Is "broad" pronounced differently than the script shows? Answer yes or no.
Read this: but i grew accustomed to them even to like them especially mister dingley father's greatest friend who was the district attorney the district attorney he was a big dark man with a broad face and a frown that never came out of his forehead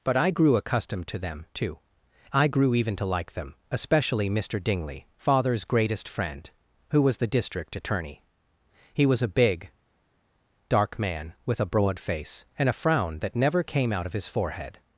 no